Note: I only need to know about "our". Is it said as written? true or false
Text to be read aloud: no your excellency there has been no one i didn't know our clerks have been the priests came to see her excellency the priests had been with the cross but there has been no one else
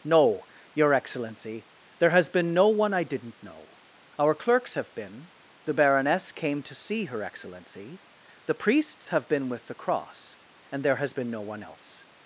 true